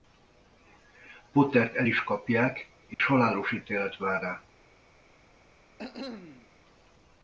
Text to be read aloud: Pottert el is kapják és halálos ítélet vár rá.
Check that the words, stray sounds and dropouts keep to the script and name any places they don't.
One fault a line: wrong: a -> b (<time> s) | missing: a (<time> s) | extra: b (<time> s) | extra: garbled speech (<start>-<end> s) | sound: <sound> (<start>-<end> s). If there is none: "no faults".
sound: dropout (2.9-3.0 s)
sound: cough (5.8-6.5 s)